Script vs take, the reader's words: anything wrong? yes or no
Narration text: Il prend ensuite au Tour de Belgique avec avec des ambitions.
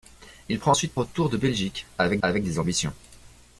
no